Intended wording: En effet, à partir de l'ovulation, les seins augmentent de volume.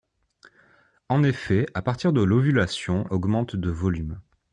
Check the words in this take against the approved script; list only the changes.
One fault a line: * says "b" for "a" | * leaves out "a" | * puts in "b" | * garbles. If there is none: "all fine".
* leaves out "les seins"